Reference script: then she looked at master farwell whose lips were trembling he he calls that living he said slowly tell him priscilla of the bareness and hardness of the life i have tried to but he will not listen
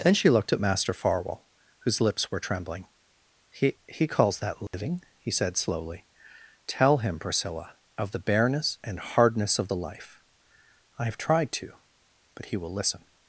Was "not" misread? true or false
true